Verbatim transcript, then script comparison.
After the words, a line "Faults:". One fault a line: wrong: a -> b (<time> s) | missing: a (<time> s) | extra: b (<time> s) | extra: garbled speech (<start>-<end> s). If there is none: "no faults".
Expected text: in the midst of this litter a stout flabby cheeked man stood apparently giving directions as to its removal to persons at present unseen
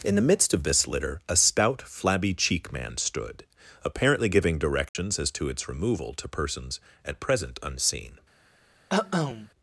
in the midst of this litter a stout flabby cheek man stood apparently giving directions as to its removal to persons at present unseen
Faults:
wrong: cheeked -> cheek (2.3 s)